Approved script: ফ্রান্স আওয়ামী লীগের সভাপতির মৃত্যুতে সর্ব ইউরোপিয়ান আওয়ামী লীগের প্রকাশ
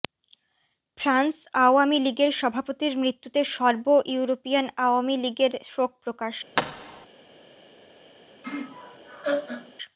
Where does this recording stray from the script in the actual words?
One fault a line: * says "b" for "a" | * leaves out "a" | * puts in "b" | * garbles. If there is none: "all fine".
* puts in "শোক"